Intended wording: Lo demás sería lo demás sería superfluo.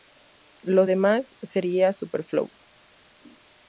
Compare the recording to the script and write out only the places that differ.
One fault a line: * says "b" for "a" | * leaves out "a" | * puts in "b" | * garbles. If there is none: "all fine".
* leaves out "lo demás sería"